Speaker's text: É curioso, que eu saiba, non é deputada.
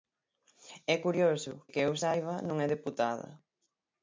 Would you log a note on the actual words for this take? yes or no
no